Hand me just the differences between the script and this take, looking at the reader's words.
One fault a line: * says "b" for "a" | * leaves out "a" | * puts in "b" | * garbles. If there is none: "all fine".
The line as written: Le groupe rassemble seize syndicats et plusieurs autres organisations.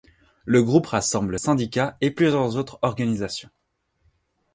* leaves out "seize"